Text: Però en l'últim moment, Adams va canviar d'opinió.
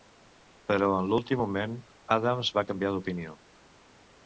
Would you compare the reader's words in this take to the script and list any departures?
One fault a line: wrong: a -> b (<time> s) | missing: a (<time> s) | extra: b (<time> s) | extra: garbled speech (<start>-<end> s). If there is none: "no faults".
no faults